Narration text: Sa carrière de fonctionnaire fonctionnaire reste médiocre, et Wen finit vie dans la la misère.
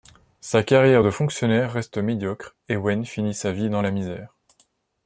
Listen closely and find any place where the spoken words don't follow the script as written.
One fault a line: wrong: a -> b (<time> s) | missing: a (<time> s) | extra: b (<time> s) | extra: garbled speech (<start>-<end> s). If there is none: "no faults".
missing: fonctionnaire (1.7 s)
extra: sa (3.3 s)
missing: la (3.9 s)